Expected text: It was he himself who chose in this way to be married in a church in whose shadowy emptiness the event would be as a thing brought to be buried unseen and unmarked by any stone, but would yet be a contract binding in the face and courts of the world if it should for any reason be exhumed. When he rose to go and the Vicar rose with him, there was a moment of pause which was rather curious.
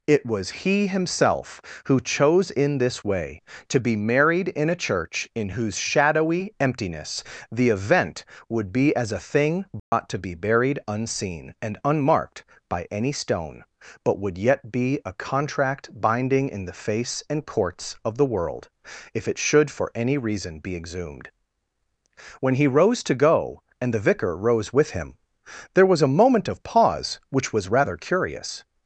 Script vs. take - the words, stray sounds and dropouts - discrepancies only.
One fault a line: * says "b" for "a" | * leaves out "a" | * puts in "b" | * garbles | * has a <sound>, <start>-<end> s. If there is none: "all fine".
* has a dropout, 9.8-9.9 s